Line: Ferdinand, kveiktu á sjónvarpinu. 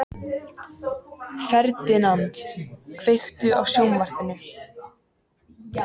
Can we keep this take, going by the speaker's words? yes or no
yes